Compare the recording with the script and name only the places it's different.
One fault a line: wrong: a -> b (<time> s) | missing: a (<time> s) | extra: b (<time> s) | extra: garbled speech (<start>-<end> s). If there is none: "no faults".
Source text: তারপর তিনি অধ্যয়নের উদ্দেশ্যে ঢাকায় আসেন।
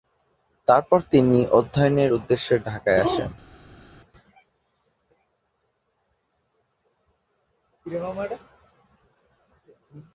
no faults